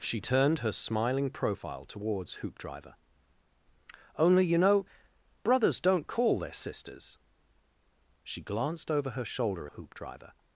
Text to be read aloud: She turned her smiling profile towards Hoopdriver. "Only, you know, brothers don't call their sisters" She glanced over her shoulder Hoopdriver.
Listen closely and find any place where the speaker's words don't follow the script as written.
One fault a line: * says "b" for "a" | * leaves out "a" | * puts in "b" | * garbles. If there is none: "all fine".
all fine